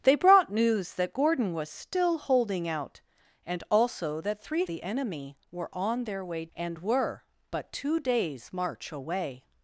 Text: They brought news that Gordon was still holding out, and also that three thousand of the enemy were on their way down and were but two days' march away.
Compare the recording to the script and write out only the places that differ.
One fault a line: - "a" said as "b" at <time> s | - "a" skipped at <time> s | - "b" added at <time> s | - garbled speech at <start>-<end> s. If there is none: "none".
- "thousand of" skipped at 4.7 s
- "down" skipped at 6.5 s